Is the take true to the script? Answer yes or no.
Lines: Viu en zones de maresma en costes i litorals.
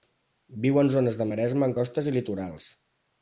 yes